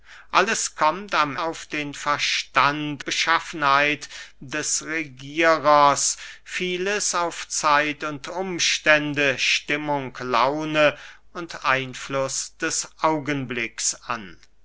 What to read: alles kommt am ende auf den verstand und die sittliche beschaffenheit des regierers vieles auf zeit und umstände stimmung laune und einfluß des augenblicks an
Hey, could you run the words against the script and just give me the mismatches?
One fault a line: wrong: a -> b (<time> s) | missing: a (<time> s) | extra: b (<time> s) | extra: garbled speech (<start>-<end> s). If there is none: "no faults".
missing: ende (1.4 s)
missing: und die sittliche (3.0 s)